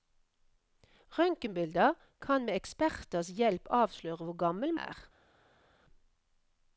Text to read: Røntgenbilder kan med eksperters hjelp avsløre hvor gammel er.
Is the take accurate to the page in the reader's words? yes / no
yes